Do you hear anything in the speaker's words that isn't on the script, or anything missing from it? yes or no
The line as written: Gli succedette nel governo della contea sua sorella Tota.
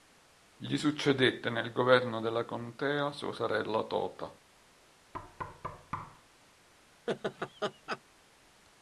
no